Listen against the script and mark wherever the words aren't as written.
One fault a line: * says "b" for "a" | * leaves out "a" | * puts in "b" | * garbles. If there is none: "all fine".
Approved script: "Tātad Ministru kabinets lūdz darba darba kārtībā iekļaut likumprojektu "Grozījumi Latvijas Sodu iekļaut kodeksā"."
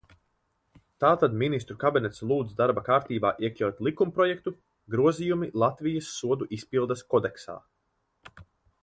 * leaves out "darba"
* says "izpildes" for "iekļaut"